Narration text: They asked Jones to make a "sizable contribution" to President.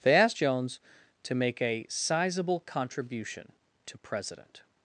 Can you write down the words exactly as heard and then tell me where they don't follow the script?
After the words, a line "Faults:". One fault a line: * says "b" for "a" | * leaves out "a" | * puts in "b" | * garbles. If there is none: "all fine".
They asked Jones to make a "sizable contribution" to President.
Faults:
all fine